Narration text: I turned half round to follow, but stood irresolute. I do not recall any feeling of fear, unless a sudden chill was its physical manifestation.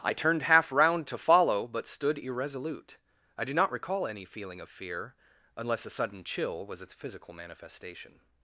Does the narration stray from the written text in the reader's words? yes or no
no